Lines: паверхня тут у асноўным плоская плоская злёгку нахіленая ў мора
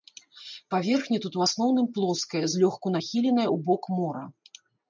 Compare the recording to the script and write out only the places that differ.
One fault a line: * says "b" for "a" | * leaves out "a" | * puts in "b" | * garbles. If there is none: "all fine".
* leaves out "плоская"
* puts in "бок"